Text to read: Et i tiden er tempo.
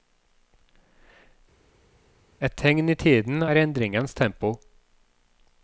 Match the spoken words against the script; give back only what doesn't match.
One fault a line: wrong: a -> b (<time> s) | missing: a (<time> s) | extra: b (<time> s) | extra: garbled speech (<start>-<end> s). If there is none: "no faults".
extra: tegn (2.6 s)
extra: endringens (3.6 s)